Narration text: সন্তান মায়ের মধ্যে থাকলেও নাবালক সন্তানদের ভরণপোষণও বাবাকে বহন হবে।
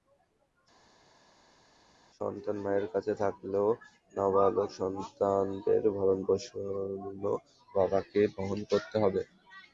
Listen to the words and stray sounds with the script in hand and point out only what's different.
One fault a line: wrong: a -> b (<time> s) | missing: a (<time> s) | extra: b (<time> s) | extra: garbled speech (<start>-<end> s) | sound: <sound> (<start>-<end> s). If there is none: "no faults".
wrong: মধ্যে -> কাছে (2.9 s)
extra: করতে (8.7 s)